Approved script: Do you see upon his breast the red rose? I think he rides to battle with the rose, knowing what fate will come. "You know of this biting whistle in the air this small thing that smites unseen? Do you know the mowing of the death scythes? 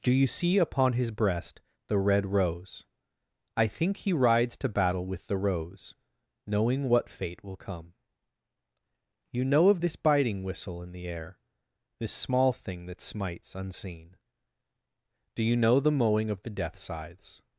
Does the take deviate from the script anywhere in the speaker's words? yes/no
no